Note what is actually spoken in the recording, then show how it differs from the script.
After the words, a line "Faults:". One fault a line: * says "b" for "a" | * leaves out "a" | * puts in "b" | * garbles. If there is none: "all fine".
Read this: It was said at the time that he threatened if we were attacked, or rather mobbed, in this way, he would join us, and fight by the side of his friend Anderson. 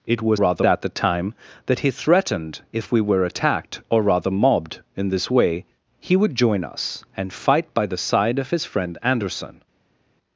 It was rather at the time that he threatened if we were attacked, or rather mobbed, in this way, he would join us, and fight by the side of his friend Anderson.
Faults:
* says "rather" for "said"